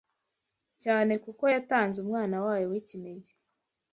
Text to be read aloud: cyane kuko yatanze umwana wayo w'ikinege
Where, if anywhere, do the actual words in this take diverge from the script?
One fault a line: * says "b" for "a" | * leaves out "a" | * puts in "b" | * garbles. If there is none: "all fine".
all fine